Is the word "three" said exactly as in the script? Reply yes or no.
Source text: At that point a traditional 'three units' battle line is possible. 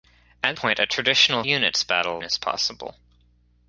no